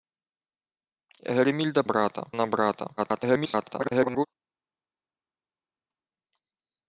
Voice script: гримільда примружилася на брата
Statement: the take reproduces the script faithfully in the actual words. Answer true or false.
false